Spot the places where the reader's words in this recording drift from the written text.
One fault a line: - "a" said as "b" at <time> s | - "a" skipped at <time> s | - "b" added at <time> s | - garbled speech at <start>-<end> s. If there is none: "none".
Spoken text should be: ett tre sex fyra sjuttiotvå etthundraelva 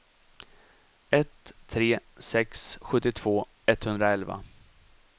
- "fyra" skipped at 2.8 s